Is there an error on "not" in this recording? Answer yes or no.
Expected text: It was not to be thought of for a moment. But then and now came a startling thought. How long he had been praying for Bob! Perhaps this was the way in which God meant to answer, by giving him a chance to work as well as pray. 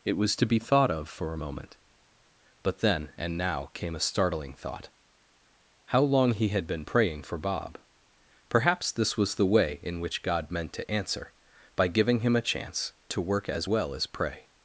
yes